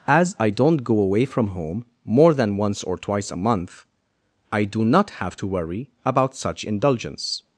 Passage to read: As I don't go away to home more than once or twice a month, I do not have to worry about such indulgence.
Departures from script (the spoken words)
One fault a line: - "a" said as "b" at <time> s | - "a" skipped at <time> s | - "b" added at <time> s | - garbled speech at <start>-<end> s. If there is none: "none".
- "to" said as "from" at 1.2 s